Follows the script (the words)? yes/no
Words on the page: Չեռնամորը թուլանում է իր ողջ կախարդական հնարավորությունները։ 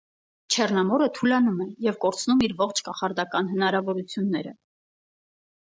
no